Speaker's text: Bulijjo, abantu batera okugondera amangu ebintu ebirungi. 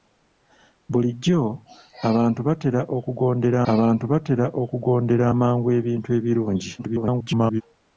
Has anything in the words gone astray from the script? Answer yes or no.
yes